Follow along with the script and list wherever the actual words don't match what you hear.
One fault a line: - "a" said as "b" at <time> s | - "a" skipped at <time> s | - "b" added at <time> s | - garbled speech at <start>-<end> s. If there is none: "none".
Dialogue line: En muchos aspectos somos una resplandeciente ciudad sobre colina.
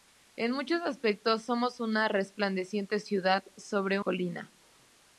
none